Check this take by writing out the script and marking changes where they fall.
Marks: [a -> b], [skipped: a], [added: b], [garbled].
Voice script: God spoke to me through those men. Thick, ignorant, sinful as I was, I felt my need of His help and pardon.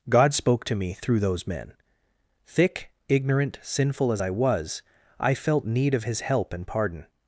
God spoke to me through those men. Thick, ignorant, sinful as I was, I felt [skipped: my] need of His help and pardon.